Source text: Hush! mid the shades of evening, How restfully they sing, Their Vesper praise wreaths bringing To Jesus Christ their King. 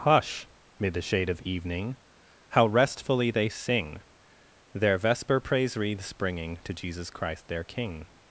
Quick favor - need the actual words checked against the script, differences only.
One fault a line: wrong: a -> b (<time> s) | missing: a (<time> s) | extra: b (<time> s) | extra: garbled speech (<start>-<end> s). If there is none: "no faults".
wrong: shades -> shade (1.0 s)